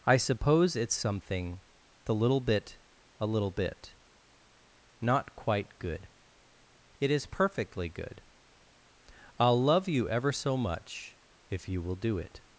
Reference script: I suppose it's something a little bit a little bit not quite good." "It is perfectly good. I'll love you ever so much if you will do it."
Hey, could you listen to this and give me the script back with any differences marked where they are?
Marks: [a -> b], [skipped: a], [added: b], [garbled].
I suppose it's something [a -> the] little bit a little bit not quite good." "It is perfectly good. I'll love you ever so much if you will do it."